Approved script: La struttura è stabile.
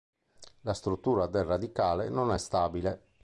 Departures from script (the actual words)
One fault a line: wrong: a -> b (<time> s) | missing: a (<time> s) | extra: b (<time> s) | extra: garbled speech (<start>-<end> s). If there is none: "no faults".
extra: del radicale non (1.3 s)